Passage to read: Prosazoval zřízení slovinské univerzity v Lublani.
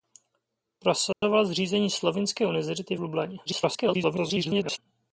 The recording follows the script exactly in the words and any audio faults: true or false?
false